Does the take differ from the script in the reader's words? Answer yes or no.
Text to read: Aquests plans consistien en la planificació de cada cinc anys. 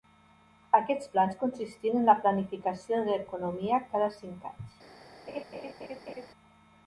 yes